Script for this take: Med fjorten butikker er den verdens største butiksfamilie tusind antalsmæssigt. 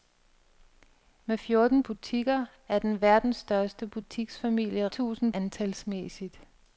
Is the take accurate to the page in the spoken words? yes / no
yes